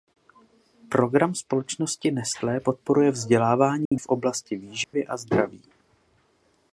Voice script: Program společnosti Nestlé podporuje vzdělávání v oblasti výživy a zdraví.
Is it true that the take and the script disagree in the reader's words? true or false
false